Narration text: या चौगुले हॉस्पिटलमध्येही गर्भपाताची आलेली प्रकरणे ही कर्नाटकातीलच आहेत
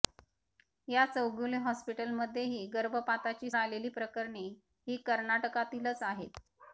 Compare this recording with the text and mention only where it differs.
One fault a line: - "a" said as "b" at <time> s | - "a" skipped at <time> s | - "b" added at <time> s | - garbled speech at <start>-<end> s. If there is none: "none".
none